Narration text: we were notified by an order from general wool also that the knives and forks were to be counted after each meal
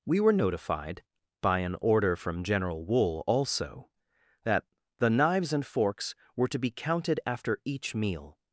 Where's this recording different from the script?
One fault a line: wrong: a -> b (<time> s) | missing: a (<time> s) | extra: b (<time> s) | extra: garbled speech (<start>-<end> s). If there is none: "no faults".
no faults